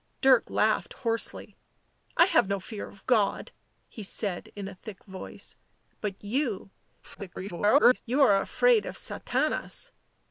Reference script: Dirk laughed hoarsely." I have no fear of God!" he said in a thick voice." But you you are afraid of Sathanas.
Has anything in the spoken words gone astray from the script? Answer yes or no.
yes